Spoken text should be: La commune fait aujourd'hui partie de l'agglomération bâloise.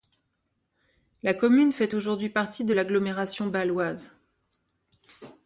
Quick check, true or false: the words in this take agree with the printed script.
true